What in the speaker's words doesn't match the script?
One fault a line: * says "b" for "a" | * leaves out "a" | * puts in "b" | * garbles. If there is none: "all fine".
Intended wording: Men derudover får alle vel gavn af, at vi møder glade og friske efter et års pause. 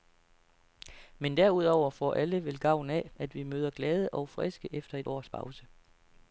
all fine